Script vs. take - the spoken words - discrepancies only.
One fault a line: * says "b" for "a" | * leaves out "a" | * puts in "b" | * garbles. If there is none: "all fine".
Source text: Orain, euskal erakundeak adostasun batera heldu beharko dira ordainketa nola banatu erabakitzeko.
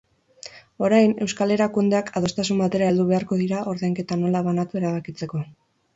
all fine